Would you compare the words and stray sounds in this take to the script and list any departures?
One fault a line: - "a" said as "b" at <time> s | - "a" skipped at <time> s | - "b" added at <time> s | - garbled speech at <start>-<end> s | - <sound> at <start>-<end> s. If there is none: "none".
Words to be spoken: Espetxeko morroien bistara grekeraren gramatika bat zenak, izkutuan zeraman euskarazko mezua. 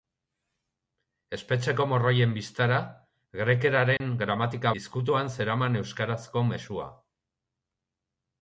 - dropout at 4.0-4.0 s
- "bat zenak" skipped at 4.7 s